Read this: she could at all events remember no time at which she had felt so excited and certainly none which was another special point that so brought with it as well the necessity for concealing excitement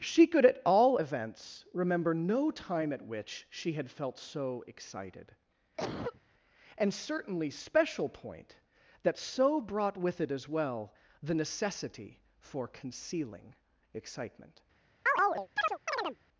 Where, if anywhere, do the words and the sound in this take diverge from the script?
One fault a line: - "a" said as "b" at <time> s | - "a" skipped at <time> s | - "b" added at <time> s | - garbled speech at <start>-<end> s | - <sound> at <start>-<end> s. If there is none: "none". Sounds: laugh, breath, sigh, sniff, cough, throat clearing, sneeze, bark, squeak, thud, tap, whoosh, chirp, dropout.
- cough at 5.8-6.2 s
- "none which was another" skipped at 7.5 s
- chirp at 15.1-16.2 s